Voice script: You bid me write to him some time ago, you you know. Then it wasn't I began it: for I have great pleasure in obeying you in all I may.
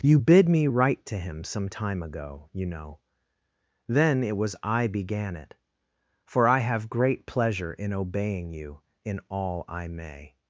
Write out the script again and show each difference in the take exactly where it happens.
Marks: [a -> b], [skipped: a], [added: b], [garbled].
You bid me write to him some time ago, you [skipped: you] know. Then it [wasn't -> was] I began it: for I have great pleasure in obeying you in all I may.